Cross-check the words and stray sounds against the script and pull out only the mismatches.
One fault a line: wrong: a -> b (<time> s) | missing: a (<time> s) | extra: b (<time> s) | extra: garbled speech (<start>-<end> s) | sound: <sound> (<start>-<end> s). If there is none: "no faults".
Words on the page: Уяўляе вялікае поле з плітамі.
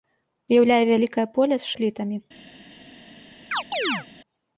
sound: chirp (3.5-4.1 s)